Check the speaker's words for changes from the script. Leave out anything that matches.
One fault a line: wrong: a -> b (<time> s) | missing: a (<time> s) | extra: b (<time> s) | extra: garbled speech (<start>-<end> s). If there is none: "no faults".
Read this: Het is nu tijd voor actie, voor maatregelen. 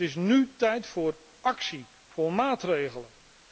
no faults